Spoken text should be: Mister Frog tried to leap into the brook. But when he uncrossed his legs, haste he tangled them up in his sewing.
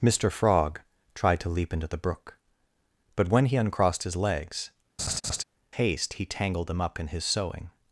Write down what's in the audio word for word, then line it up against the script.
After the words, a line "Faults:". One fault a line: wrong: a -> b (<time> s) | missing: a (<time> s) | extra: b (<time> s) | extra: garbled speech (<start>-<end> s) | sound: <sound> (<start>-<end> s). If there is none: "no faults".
Mister Frog tried to leap into the brook. But when he uncrossed his legs, haste he tangled them up in his sewing.
Faults:
sound: laugh (5.0-5.4 s)